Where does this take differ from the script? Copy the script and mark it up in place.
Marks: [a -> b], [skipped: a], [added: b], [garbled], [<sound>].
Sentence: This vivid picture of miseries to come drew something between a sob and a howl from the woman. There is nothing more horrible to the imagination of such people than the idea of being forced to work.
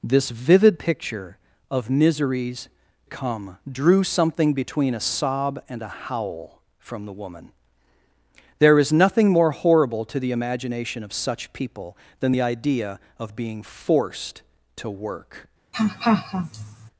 This vivid picture of miseries [skipped: to] come drew something between a sob and a howl from the woman. There is nothing more horrible to the imagination of such people than the idea of being forced to work. [laugh]